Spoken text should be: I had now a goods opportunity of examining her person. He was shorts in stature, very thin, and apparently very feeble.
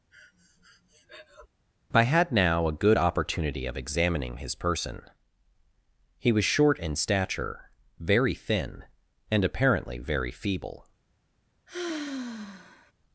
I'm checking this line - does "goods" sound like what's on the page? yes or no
no